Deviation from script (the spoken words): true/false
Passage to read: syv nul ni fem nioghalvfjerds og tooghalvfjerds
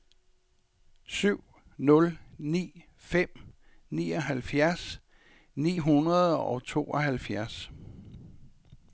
true